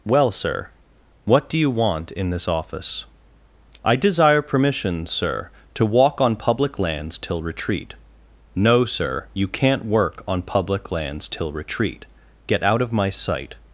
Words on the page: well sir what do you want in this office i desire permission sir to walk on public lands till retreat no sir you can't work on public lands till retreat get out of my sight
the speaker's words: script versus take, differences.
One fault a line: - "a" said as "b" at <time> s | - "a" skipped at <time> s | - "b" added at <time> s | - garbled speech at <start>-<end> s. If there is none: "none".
none